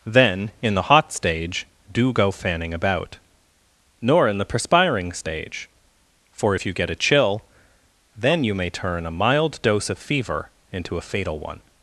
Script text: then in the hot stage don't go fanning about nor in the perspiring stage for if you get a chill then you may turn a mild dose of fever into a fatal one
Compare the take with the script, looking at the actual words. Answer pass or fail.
fail